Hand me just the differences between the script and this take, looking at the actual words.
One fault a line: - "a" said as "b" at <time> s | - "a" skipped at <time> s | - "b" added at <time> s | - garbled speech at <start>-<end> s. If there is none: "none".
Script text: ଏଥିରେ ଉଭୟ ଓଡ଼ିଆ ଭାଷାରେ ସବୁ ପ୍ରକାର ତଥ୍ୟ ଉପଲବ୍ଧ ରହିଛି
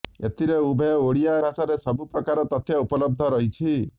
none